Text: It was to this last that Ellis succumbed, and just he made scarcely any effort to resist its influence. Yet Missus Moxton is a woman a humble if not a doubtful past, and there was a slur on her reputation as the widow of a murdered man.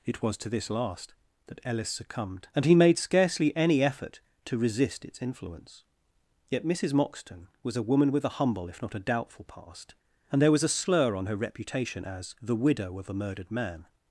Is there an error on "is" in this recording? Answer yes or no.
yes